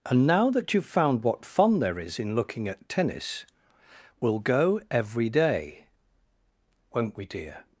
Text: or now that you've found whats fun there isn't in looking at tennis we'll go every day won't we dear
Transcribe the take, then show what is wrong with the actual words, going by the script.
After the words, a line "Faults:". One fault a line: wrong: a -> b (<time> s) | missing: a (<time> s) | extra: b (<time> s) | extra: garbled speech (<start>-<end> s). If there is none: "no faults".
and now that you've found what fun there is in looking at tennis we'll go every day won't we dear
Faults:
wrong: or -> and (0.1 s)
wrong: whats -> what (1.2 s)
wrong: isn't -> is (2.0 s)